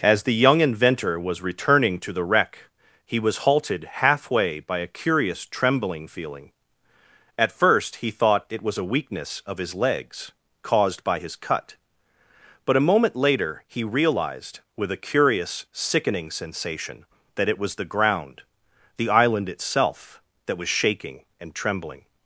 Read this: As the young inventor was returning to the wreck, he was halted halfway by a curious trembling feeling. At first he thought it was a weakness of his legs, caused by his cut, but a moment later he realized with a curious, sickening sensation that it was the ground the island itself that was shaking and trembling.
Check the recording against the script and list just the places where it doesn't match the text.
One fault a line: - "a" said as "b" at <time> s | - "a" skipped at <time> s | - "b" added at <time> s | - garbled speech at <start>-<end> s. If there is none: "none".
none